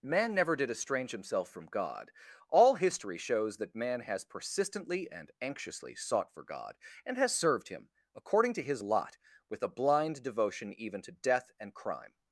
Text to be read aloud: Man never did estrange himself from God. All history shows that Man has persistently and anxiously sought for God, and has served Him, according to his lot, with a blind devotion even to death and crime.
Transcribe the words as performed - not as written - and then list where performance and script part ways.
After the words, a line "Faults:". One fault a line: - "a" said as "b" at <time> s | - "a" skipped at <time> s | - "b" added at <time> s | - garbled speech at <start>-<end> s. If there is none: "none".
Man never did estrange himself from God. All history shows that Man has persistently and anxiously sought for God, and has served Him, according to his lot, with a blind devotion even to death and crime.
Faults:
none